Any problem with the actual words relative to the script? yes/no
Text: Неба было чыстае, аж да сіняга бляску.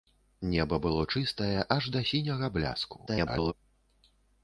yes